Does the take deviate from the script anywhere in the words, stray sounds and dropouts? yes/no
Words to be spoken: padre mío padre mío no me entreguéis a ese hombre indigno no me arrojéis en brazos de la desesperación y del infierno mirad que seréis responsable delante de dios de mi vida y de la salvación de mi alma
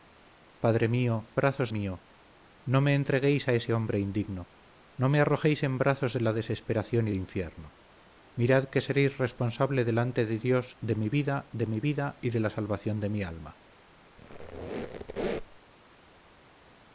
yes